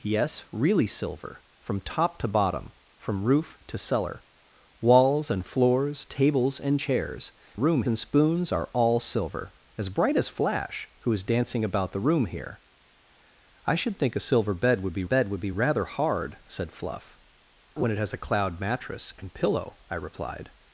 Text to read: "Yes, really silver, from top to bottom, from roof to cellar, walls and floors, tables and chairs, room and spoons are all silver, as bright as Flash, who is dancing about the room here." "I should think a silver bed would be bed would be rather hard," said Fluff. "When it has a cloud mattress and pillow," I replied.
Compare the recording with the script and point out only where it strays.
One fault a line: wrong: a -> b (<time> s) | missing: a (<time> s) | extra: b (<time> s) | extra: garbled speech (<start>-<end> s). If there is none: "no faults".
no faults